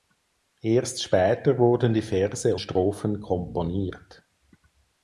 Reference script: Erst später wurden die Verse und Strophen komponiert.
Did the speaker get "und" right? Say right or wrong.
wrong